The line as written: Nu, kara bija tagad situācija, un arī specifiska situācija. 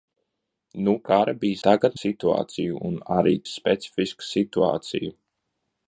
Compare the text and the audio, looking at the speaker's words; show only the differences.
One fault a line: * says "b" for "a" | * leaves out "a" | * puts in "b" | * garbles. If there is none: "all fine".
all fine